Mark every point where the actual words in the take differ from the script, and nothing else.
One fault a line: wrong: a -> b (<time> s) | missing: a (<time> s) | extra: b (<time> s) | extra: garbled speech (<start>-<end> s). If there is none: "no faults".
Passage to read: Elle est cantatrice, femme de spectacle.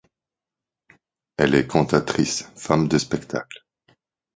no faults